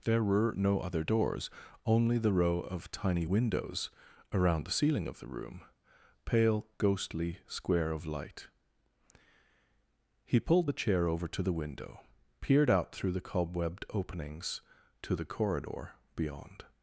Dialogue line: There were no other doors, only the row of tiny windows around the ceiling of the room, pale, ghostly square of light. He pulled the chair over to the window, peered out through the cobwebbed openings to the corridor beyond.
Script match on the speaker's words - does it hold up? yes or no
yes